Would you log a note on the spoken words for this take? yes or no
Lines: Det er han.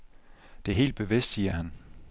yes